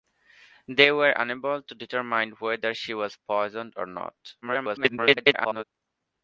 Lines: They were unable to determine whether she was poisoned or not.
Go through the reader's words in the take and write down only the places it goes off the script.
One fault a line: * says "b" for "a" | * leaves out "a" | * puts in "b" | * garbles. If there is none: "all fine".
* garbles